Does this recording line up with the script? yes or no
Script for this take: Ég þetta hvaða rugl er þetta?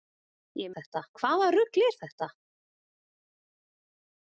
yes